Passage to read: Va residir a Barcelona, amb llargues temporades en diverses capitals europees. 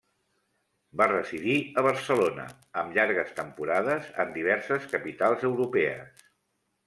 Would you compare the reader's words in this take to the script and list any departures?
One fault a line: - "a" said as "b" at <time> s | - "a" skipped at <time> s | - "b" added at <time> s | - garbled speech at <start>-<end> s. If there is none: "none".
none